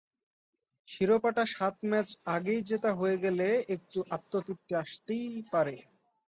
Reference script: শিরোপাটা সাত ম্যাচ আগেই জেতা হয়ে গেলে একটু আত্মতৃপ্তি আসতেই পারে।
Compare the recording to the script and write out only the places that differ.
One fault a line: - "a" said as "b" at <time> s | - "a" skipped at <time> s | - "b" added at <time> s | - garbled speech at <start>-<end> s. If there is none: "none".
none